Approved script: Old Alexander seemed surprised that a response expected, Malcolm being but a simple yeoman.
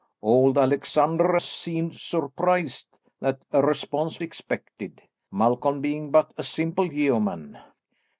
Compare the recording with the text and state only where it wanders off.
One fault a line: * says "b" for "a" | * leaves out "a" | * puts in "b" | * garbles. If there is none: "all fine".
all fine